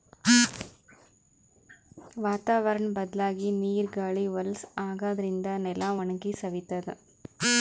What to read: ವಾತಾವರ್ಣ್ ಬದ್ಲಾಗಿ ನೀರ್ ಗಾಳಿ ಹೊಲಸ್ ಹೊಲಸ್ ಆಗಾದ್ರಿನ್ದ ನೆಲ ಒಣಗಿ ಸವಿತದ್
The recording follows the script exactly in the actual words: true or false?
false